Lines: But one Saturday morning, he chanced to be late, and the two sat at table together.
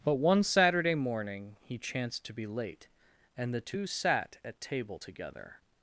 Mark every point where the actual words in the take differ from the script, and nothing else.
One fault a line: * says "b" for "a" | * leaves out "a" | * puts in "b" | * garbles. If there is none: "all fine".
all fine